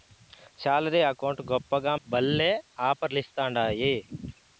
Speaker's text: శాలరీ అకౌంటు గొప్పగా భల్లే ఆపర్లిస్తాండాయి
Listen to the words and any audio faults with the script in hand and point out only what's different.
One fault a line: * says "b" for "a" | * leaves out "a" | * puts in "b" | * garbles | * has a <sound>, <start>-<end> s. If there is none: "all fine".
all fine